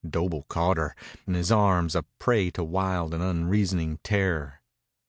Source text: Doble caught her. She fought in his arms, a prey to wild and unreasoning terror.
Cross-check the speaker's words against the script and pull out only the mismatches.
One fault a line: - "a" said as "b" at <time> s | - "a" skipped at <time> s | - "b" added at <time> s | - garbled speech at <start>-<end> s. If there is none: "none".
- "She fought" skipped at 0.9 s